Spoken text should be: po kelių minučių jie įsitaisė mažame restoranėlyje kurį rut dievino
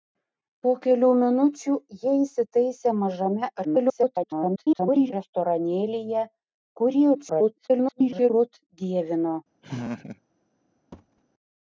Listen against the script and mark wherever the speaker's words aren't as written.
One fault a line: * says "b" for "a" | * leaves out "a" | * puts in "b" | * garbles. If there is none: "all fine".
* garbles
* garbles